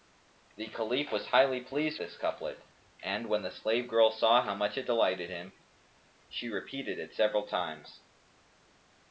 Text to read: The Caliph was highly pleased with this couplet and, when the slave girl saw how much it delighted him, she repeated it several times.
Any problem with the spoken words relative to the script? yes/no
yes